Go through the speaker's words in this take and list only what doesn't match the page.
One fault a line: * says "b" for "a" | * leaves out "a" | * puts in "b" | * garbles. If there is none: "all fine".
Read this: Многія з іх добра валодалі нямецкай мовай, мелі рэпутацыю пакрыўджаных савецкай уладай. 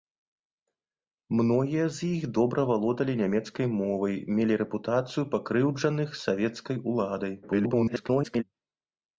* garbles